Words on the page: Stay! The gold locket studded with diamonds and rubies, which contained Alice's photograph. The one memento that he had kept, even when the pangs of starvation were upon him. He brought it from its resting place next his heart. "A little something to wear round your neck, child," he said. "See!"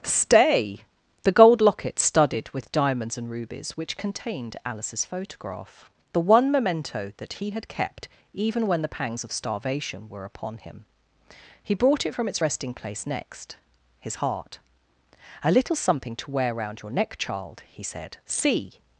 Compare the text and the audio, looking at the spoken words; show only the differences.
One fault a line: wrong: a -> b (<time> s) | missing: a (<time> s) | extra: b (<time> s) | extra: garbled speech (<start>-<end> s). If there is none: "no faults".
no faults